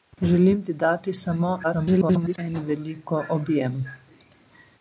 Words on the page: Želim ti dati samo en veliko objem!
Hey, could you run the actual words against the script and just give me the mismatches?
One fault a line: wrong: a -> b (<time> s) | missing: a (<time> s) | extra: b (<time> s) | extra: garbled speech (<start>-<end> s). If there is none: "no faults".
extra: garbled speech (1.6-2.4 s)